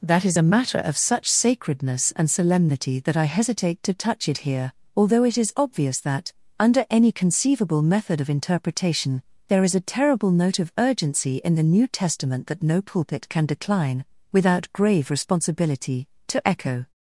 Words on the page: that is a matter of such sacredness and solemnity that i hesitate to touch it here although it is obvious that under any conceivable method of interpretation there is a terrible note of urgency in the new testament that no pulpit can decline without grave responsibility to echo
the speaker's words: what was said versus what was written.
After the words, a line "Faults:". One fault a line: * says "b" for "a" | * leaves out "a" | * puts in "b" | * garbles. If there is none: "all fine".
that is a matter of such sacredness and solemnity that i hesitate to touch it here although it is obvious that under any conceivable method of interpretation there is a terrible note of urgency in the new testament that no pulpit can decline without grave responsibility to echo
Faults:
all fine